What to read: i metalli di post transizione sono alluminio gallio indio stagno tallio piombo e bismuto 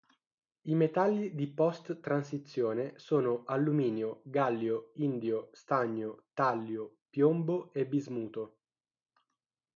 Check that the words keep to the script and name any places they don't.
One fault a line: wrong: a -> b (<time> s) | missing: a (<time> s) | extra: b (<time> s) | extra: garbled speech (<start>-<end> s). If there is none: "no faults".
no faults